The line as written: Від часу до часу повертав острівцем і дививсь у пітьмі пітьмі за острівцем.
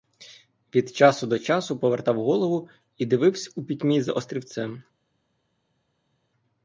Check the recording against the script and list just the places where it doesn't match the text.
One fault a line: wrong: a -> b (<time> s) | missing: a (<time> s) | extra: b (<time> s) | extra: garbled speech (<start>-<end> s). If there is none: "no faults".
wrong: острівцем -> голову (2.1 s)
missing: пітьмі (4.0 s)